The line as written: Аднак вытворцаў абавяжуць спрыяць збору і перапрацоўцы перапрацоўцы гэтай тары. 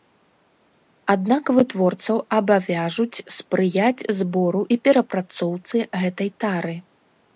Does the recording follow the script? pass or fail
fail